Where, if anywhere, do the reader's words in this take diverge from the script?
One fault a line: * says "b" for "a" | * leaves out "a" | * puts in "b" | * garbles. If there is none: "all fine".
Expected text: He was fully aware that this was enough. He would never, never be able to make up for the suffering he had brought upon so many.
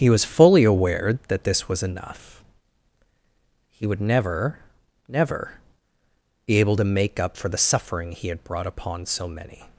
all fine